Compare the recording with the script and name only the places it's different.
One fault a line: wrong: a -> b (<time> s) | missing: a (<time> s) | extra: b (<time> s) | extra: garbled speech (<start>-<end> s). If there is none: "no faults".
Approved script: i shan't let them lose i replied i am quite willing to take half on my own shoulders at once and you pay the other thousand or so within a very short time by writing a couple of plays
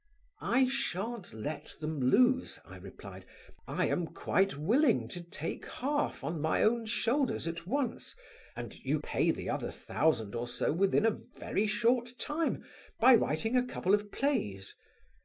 no faults